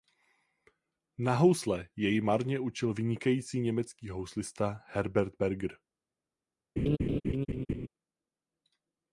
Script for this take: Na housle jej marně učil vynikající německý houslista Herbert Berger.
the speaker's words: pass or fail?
pass